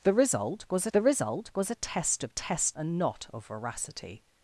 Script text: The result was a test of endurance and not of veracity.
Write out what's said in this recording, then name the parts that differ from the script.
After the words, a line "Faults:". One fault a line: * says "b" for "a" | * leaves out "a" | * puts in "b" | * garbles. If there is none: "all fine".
The result was the result was a test of test and not of veracity.
Faults:
* puts in "the result was"
* says "test" for "endurance"